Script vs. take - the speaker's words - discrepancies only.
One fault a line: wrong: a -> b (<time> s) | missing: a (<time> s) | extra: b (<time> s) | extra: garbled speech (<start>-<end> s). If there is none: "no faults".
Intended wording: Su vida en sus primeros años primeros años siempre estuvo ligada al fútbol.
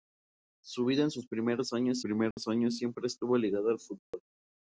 no faults